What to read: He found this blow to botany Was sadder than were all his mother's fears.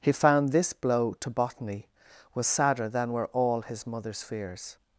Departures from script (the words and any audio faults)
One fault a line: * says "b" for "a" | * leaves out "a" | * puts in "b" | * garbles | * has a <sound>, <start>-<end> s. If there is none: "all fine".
all fine